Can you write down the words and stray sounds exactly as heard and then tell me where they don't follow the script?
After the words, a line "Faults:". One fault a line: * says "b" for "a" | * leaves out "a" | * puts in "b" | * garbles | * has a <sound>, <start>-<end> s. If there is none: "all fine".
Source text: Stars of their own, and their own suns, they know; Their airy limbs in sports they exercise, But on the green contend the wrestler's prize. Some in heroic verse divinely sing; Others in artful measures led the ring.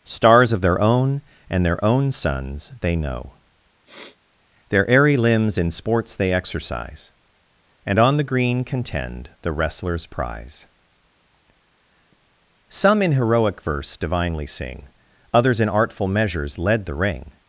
Stars of their own, and their own suns, they know; Their airy limbs in sports they exercise, And on the green contend the wrestler's prize. Some in heroic verse divinely sing; Others in artful measures led the ring.
Faults:
* has a sniff, 3.9-4.2 s
* says "And" for "But"